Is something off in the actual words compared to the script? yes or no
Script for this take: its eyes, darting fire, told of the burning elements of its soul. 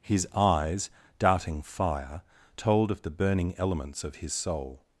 yes